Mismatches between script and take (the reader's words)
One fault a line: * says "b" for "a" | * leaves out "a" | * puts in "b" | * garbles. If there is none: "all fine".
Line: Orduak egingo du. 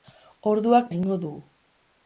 all fine